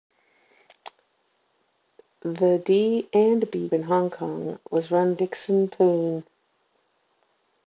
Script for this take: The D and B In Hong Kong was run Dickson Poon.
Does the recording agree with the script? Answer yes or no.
yes